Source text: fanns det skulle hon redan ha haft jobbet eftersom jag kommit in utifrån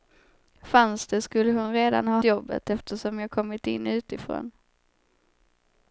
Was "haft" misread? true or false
true